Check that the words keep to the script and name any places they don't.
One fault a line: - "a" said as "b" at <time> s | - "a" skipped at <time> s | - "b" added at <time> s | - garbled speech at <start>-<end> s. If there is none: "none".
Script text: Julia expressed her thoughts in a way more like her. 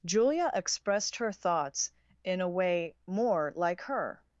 none